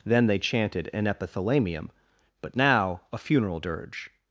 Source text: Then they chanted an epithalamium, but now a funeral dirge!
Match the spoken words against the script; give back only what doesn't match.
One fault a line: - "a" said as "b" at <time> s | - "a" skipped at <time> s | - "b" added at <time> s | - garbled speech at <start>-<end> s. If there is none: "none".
none